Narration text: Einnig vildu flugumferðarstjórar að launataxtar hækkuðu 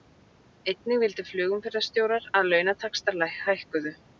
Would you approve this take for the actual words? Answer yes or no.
yes